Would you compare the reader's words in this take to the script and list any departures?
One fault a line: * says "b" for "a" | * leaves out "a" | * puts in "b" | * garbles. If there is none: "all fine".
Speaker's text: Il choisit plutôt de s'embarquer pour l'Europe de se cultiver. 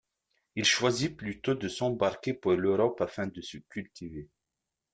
* puts in "afin"